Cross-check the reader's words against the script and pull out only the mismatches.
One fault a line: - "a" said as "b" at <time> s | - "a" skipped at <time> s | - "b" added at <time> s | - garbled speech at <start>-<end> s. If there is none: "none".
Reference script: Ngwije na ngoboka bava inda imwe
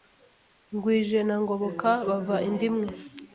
none